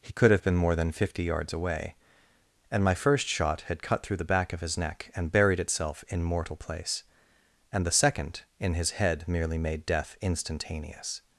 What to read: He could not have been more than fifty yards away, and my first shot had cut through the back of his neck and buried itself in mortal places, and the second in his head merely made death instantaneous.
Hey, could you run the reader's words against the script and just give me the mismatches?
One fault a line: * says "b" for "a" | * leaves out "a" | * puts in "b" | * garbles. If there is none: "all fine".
* leaves out "not"
* says "place" for "places"